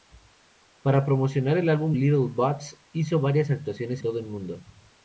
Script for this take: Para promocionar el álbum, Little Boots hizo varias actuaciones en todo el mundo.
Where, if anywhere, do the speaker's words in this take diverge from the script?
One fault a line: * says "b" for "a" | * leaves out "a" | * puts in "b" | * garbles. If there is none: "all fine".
* leaves out "en"